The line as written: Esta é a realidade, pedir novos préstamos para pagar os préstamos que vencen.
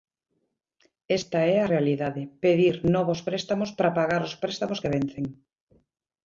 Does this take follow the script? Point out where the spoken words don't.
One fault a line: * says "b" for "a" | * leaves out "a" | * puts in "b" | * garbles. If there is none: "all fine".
all fine